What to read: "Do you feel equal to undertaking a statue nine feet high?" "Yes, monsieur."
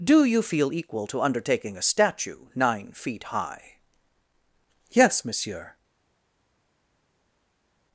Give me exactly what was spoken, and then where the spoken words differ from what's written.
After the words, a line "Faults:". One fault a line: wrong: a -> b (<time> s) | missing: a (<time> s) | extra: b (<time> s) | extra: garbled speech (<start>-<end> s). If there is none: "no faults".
"Do you feel equal to undertaking a statue nine feet high?" "Yes, monsieur."
Faults:
no faults